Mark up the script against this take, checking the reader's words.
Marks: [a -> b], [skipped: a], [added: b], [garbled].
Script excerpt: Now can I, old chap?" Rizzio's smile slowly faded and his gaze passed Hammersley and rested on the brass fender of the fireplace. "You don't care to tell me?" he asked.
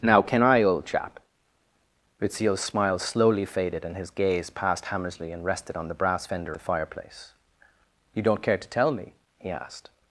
Now can I, old chap?" Rizzio's smile slowly faded and his gaze passed Hammersley and rested on the brass fender [skipped: of] the fireplace. "You don't care to tell me?" he asked.